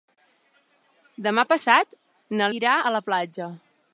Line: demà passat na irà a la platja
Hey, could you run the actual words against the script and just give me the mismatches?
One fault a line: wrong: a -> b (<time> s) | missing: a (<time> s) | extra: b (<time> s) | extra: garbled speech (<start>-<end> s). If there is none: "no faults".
no faults